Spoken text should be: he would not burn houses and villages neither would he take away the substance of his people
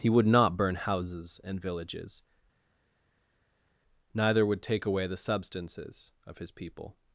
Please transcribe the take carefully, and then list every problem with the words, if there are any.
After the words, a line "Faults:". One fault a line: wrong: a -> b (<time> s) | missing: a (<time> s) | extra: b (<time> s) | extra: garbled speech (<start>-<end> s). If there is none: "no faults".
he would not burn houses and villages neither would take away the substances of his people
Faults:
missing: he (4.6 s)
wrong: substance -> substances (5.2 s)